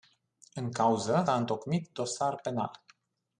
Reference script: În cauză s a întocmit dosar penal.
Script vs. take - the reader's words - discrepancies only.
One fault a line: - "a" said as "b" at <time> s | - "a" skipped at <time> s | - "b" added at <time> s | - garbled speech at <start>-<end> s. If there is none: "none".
- "s" skipped at 1.2 s